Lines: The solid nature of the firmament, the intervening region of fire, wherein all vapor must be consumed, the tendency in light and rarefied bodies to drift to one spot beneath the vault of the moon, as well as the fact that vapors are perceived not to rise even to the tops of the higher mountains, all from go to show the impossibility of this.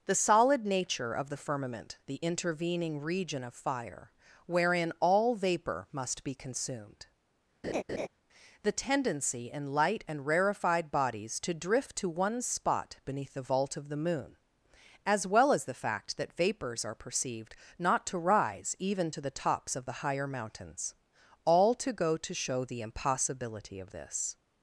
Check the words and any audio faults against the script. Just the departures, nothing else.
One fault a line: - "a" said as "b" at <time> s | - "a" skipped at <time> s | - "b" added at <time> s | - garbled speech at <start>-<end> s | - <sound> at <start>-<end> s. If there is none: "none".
- laugh at 7.6-8.1 s
- "from" said as "to" at 21.8 s